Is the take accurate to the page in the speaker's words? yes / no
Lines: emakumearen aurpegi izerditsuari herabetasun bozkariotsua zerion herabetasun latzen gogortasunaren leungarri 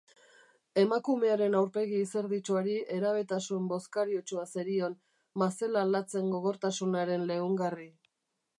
no